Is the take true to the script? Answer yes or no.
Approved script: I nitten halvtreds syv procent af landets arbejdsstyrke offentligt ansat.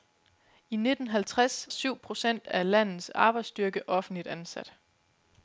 yes